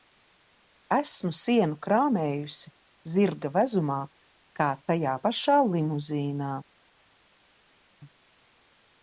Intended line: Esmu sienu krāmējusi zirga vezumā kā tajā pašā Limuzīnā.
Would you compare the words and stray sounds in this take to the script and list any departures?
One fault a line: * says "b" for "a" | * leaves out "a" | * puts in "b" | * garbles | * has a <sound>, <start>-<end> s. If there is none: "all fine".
all fine